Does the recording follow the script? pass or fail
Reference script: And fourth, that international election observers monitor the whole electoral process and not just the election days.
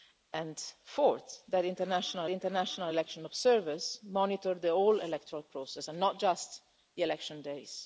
fail